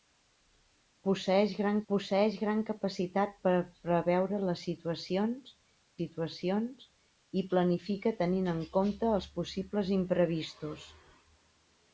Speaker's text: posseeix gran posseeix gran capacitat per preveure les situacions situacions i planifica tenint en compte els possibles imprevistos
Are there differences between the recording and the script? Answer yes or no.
no